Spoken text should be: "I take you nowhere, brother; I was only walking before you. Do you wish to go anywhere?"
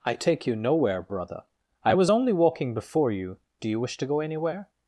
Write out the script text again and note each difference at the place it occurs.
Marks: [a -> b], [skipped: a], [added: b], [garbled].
"I take you nowhere, brother; I was only walking before you. Do you wish to go anywhere?"